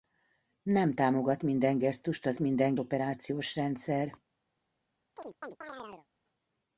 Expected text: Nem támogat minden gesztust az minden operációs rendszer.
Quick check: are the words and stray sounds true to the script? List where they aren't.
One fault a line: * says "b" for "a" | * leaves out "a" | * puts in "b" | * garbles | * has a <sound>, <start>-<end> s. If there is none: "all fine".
* has a chirp, 5.2-6.1 s